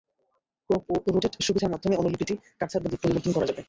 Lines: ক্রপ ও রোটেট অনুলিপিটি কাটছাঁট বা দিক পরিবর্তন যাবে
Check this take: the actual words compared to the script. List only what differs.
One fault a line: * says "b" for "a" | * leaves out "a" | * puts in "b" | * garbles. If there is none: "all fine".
* puts in "সুবিধার মাধ্যমে"
* puts in "করা"